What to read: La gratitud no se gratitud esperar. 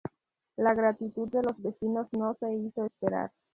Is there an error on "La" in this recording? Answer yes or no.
no